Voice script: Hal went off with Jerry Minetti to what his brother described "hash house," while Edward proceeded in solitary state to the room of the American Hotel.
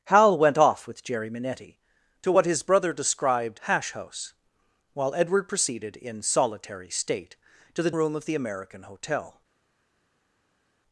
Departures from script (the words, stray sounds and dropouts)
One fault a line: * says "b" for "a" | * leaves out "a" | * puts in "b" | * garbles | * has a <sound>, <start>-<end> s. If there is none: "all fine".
all fine